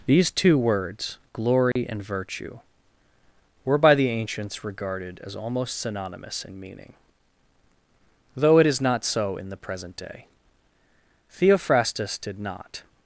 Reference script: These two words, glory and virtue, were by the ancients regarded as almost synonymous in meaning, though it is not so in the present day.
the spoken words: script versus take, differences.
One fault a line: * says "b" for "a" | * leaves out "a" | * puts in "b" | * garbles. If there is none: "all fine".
* puts in "Theophrastus did not"